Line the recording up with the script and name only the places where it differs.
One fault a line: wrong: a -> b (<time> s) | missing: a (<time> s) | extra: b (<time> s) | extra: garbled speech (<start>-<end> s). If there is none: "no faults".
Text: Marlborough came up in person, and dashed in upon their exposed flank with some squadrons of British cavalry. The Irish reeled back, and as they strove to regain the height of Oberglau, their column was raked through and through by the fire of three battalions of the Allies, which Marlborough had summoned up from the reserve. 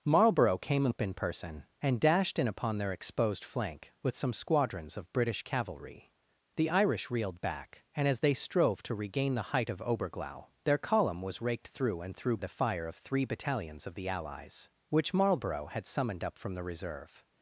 missing: by (12.4 s)